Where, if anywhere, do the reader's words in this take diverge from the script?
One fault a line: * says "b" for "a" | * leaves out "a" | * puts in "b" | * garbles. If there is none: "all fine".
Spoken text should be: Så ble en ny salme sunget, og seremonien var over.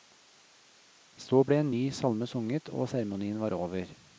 all fine